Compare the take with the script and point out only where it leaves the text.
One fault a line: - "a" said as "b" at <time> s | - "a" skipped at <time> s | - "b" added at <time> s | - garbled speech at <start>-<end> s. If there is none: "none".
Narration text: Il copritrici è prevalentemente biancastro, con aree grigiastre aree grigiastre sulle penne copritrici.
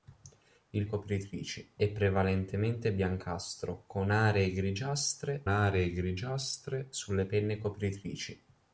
none